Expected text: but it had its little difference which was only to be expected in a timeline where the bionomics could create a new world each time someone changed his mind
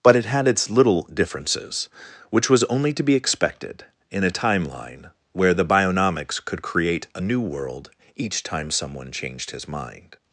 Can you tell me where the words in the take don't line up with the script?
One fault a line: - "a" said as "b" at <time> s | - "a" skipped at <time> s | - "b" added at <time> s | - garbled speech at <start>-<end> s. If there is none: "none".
- "difference" said as "differences" at 1.1 s